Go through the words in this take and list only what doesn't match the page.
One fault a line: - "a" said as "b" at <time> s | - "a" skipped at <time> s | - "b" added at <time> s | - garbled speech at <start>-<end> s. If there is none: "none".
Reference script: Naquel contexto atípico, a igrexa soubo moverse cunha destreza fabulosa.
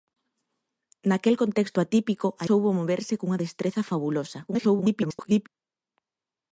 - "igrexa" skipped at 2.5 s
- garbled speech at 4.5-5.5 s